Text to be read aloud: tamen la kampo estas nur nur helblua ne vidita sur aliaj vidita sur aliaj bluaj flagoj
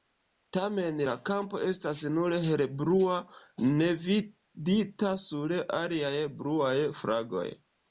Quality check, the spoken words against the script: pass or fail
fail